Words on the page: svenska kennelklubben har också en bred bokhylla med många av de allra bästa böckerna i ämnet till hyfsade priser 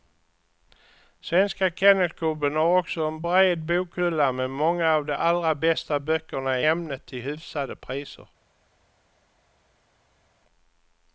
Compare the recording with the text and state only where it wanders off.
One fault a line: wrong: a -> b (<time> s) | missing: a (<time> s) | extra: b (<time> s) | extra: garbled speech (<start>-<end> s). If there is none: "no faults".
missing: i (6.6 s)